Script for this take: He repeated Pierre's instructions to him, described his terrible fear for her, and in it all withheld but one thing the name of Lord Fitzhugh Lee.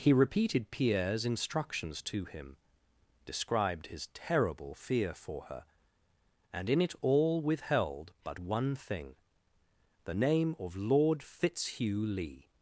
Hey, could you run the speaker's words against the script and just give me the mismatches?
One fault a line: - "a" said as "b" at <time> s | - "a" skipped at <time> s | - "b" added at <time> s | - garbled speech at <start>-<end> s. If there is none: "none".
none